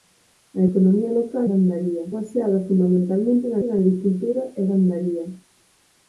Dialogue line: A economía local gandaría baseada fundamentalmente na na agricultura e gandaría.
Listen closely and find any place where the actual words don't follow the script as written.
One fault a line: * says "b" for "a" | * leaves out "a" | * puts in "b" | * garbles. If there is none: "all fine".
all fine